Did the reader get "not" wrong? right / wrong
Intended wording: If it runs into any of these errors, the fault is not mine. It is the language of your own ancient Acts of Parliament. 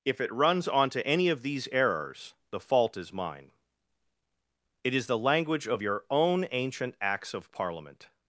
wrong